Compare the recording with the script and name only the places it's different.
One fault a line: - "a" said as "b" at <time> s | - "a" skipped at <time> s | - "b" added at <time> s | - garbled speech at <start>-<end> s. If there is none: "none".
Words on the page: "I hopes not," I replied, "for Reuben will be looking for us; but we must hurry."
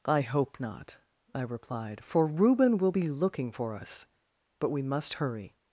- "hopes" said as "hope" at 0.2 s